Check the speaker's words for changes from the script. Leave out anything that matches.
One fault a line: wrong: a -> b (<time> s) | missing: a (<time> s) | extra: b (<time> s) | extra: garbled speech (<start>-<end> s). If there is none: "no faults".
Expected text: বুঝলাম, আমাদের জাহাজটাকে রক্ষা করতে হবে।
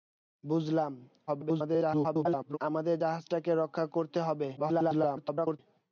extra: garbled speech (1.3-2.6 s)
extra: garbled speech (4.6-5.6 s)